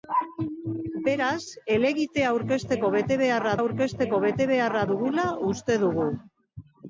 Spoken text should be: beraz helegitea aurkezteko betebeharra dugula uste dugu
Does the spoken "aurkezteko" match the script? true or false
true